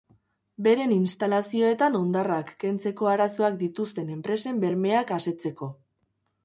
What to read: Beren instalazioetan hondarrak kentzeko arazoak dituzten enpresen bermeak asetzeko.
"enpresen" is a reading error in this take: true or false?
false